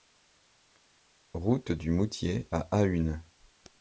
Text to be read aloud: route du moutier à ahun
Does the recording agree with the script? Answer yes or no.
yes